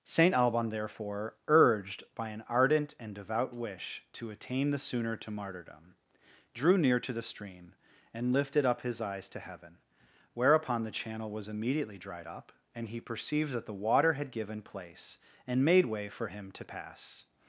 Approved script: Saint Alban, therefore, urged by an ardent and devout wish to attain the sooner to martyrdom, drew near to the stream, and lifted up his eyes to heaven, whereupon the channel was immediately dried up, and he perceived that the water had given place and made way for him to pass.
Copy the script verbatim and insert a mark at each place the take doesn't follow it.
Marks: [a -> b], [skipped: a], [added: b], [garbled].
Saint Alban, therefore, urged by an ardent and devout wish to attain the sooner to martyrdom, drew near to the stream, and lifted up his eyes to heaven, whereupon the channel was immediately dried up, and he perceived that the water had given place and made way for him to pass.